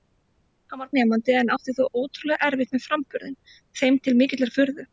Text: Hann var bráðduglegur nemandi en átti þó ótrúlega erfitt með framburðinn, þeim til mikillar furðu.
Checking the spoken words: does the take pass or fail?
fail